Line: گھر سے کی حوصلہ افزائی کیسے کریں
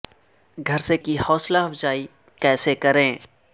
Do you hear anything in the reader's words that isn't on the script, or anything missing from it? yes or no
no